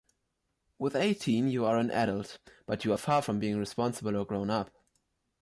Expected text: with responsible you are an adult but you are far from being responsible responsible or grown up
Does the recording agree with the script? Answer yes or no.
no